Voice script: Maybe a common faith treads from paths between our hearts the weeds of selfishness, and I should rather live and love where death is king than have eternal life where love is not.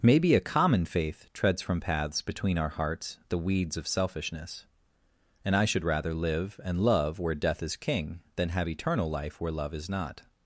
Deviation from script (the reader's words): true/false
false